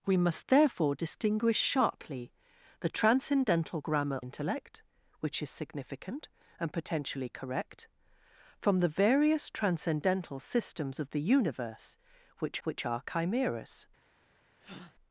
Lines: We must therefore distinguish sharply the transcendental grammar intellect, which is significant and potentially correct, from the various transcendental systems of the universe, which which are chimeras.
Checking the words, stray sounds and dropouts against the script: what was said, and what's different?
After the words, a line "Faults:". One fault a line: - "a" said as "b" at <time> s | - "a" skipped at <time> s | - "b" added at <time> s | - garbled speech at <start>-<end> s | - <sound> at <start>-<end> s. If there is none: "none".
We must therefore distinguish sharply the transcendental grammar intellect, which is significant and potentially correct, from the various transcendental systems of the universe, which which are chimeras.
Faults:
- breath at 14.6-14.9 s